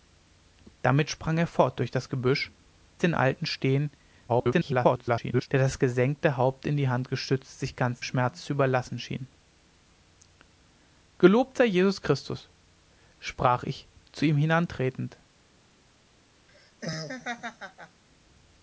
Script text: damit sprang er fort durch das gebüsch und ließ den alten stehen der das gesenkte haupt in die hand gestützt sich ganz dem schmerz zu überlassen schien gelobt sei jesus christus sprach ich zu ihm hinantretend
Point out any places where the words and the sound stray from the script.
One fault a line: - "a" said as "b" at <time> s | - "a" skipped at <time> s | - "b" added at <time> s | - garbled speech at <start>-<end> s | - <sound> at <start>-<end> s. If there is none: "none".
- "und ließ" skipped at 2.5 s
- garbled speech at 4.3-5.5 s
- "dem" skipped at 8.0 s
- laugh at 16.5-18.0 s